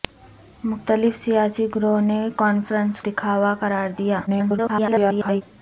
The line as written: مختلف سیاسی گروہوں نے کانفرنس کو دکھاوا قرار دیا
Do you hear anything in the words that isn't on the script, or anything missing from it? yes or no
yes